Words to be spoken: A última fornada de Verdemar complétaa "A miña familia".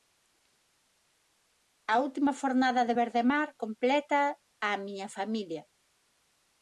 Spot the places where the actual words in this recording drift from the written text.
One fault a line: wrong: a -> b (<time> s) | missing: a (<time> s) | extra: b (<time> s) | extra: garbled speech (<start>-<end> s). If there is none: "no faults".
no faults